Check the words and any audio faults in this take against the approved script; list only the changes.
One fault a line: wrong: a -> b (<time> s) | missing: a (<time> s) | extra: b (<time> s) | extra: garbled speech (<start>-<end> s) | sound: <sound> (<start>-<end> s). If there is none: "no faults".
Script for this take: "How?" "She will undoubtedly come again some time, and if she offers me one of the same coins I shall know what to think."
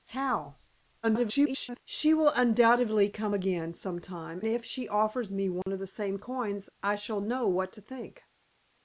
extra: garbled speech (1.0-1.8 s)
missing: and (4.4 s)
sound: dropout (5.6-5.7 s)